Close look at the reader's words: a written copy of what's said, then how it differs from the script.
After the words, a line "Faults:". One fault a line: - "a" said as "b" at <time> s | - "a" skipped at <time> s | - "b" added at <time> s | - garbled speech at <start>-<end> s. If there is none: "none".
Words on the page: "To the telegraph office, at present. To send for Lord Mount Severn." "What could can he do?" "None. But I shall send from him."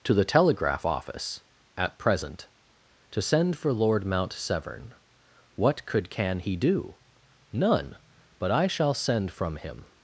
"To the telegraph office, at present. To send for Lord Mount Severn." "What could can he do?" "None. But I shall send from him."
Faults:
none